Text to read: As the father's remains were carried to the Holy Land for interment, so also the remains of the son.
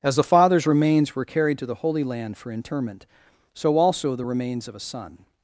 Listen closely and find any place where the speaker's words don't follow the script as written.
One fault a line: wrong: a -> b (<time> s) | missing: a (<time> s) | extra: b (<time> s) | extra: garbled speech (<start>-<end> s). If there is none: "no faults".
wrong: the -> a (4.7 s)